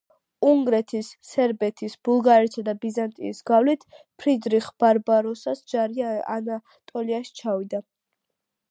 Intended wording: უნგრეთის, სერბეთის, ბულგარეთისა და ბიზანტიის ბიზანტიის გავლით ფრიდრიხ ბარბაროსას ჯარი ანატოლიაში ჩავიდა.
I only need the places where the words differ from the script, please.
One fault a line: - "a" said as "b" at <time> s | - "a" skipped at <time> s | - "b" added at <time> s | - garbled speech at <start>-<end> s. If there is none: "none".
- "ბიზანტიის" skipped at 3.4 s